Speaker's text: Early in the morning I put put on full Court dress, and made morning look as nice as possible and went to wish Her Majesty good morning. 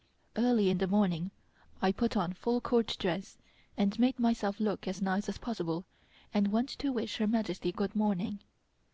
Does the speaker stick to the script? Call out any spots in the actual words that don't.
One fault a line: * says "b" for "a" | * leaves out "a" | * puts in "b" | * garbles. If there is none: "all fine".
* leaves out "put"
* says "myself" for "morning"